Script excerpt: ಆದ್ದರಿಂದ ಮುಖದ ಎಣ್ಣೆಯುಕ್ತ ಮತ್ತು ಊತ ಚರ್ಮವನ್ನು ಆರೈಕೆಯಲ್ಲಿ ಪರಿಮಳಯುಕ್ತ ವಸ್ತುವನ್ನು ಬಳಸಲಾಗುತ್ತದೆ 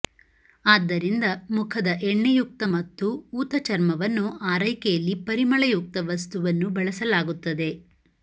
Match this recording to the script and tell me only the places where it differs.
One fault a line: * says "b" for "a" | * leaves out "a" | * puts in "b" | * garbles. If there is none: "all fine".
all fine